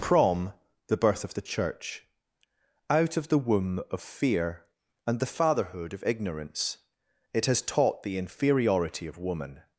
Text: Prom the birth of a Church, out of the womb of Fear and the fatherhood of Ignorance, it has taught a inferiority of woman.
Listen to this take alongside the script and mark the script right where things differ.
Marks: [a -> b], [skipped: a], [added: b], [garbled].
Prom the birth of [a -> the] Church, out of the womb of Fear and the fatherhood of Ignorance, it has taught [a -> the] inferiority of woman.